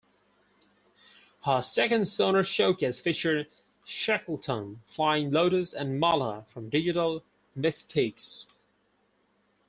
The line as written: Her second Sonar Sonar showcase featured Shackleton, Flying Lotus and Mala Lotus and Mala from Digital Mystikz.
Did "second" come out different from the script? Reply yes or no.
no